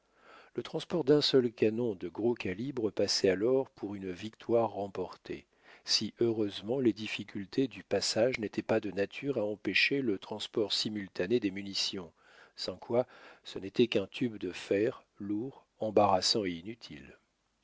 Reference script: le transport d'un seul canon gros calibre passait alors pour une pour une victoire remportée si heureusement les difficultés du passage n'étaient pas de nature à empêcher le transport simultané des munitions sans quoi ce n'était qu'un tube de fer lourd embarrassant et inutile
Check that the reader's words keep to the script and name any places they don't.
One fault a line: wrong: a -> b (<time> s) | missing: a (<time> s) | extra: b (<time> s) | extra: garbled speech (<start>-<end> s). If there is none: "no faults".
extra: de (1.9 s)
missing: pour une (4.1 s)